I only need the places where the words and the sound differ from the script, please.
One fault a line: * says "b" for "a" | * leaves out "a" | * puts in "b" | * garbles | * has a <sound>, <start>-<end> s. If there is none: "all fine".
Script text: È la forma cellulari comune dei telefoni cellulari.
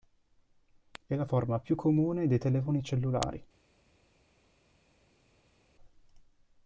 * says "più" for "cellulari"